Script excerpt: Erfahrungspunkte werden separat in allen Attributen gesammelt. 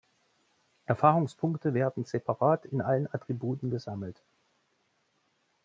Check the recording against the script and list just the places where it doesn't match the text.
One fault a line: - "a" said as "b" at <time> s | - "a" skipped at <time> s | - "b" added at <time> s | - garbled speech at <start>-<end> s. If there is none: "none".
none